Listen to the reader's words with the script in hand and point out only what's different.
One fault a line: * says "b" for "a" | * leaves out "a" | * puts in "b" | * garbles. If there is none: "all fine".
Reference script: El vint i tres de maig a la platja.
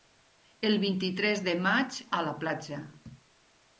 all fine